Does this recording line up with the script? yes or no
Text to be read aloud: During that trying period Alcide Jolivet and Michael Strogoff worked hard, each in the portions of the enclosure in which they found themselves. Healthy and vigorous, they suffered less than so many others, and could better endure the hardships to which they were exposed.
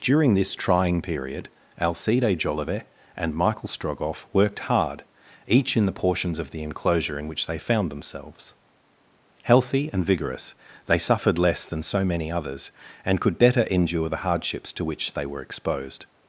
no